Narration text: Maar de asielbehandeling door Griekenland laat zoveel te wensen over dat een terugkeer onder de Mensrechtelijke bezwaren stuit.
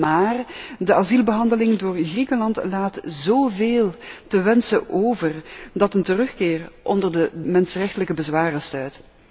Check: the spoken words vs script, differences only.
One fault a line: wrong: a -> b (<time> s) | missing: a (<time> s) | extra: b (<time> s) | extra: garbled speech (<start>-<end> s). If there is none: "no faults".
no faults